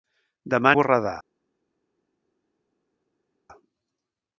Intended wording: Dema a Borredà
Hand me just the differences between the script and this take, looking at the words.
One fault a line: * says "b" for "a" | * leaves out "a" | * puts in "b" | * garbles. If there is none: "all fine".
all fine